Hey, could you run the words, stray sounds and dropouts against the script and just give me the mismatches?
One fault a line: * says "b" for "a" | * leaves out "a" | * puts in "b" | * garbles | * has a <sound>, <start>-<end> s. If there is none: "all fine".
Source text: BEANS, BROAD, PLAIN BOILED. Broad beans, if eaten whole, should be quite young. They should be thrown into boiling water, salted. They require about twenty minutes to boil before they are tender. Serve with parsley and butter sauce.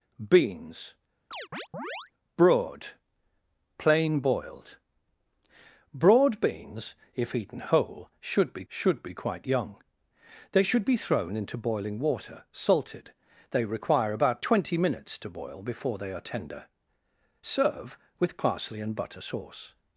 * has a chirp, 1.3-2.1 s
* puts in "should be"